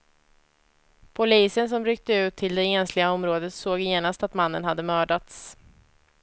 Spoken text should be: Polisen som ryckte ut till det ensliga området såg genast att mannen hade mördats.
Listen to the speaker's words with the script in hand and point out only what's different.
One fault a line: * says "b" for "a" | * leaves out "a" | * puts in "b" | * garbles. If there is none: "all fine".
all fine